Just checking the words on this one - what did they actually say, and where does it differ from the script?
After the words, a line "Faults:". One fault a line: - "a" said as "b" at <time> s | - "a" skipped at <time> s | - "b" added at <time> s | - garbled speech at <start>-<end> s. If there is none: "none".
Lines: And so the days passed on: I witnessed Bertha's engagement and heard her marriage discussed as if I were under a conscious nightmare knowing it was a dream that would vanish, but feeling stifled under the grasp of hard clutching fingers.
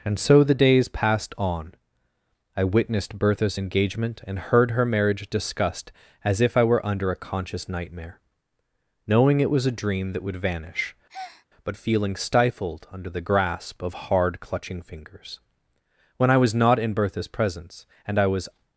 And so the days passed on: I witnessed Bertha's engagement and heard her marriage discussed as if I were under a conscious nightmare knowing it was a dream that would vanish, but feeling stifled under the grasp of hard clutching fingers. When I was not in Bertha's presence and I was
Faults:
- "When I was not in Bertha's presence and I was" added at 16.2 s